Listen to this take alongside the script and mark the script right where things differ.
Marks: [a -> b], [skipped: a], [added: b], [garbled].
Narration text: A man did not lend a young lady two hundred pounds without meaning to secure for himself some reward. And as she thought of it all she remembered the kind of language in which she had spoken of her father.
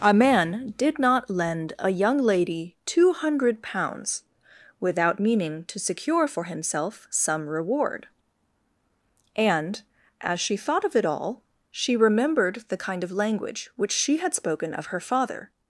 A man did not lend a young lady two hundred pounds without meaning to secure for himself some reward. And as she thought of it all she remembered the kind of language [skipped: in] which she had spoken of her father.